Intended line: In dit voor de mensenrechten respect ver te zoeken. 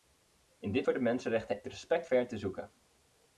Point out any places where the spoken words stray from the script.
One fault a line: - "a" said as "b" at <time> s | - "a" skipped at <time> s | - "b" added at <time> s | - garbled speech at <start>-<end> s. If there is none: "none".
none